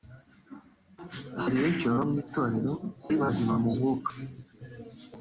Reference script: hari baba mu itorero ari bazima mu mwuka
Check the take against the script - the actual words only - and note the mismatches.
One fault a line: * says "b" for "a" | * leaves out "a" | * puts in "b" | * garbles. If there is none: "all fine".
* puts in "benshi"